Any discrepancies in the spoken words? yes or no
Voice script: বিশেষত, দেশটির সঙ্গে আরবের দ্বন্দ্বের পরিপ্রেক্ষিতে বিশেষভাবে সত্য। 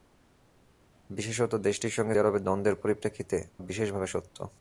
no